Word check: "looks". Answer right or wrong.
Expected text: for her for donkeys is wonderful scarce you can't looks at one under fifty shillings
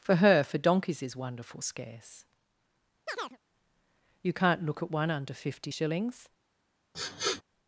wrong